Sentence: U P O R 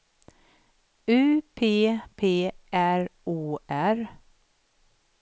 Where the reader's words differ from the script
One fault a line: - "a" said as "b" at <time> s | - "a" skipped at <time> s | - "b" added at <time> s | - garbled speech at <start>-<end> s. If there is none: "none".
- "P R" added at 2.2 s